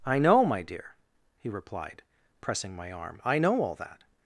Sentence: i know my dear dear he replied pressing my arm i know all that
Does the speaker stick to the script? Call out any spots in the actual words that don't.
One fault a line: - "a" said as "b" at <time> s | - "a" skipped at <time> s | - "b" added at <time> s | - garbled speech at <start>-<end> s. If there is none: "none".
- "dear" skipped at 0.9 s